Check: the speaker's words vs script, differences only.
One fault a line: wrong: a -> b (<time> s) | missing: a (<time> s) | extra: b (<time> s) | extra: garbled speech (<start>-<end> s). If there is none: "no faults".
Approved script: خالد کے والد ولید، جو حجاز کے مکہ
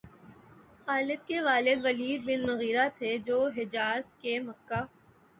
extra: بن مغیرہ تھے (2.3 s)